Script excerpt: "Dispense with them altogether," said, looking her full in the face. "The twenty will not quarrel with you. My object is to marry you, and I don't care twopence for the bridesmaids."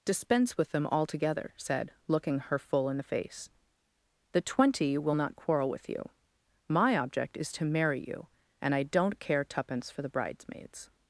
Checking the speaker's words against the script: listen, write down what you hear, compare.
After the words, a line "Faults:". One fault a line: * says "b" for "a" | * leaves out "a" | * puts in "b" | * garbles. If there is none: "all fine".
"Dispense with them altogether," said, looking her full in the face. "The twenty will not quarrel with you. My object is to marry you, and I don't care twopence for the bridesmaids."
Faults:
all fine